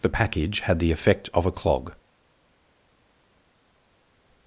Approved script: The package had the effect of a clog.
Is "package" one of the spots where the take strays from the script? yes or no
no